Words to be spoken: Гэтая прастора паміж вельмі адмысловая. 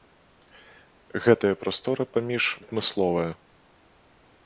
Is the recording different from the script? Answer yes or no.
yes